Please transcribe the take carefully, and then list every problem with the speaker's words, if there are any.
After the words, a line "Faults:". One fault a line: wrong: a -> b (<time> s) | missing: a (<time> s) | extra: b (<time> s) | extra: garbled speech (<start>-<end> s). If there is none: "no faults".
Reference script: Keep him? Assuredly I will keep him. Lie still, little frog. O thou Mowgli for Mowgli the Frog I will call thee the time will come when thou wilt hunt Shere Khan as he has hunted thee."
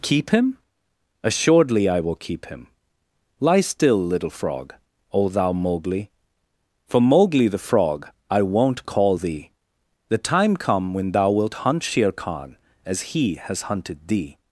Keep him? Assuredly I will keep him. Lie still, little frog. O thou Mowgli for Mowgli the Frog I won't call thee the time come when thou wilt hunt Shere Khan as he has hunted thee."
Faults:
wrong: will -> won't (8.4 s)
missing: will (10.6 s)